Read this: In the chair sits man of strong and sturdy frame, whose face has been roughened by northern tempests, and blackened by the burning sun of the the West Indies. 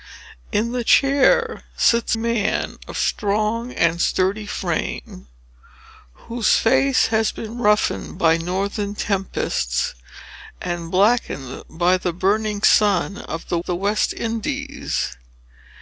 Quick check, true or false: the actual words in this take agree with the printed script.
true